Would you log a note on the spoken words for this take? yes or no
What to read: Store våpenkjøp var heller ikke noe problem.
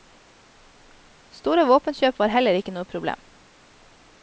no